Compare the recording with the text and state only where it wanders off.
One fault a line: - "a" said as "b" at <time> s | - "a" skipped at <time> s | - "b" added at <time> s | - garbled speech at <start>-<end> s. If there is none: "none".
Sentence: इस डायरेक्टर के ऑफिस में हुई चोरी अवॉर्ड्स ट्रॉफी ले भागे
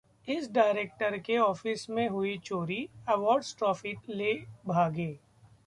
none